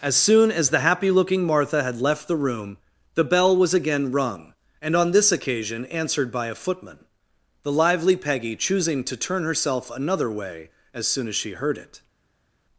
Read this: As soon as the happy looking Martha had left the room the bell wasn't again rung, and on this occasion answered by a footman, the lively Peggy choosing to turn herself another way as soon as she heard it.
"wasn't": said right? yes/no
no